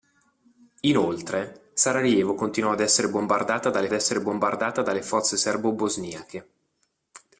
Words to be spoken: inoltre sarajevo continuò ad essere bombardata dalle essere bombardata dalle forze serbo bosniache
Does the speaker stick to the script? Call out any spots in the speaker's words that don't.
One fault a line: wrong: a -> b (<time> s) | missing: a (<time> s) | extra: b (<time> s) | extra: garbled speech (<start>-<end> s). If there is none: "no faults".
no faults